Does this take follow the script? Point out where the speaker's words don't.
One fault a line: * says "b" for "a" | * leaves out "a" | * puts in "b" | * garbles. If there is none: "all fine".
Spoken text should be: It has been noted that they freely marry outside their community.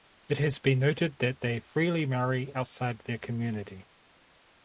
all fine